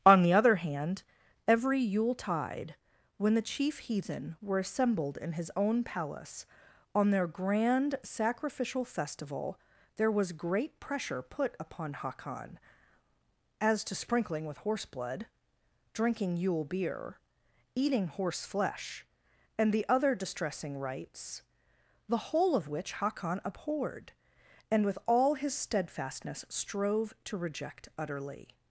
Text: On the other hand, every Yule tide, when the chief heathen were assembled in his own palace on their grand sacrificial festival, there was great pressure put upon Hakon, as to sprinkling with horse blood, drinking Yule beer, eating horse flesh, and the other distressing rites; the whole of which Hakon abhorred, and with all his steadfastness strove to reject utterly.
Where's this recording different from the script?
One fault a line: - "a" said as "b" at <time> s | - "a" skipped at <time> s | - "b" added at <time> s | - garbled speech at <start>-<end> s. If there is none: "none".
none